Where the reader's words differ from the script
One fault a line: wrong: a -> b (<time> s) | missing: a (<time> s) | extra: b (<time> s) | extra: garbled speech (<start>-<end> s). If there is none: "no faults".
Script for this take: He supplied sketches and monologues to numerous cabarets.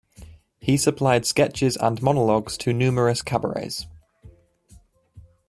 no faults